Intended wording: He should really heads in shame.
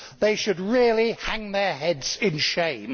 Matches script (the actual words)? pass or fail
fail